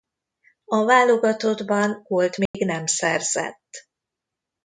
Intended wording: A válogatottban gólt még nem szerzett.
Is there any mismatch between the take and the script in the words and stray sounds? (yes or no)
yes